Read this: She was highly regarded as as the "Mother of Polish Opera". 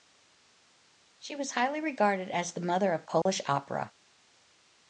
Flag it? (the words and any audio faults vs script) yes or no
yes